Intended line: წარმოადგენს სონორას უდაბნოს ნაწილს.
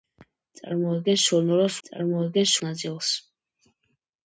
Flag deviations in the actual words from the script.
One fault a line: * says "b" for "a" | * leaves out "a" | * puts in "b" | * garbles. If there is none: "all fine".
* says "წარმოადგენს" for "უდაბნოს"